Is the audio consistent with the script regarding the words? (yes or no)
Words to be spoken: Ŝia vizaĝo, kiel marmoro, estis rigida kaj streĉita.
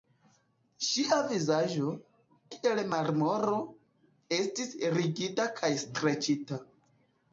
yes